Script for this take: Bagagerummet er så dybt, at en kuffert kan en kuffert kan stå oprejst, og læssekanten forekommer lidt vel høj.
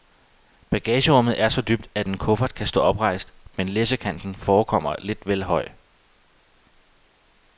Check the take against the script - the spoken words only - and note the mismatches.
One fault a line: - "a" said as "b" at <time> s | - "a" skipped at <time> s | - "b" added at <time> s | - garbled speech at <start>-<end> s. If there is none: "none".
- "en kuffert kan" skipped at 2.7 s
- "og" said as "men" at 3.6 s